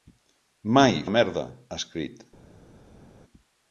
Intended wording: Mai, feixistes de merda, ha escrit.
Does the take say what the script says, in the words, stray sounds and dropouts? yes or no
no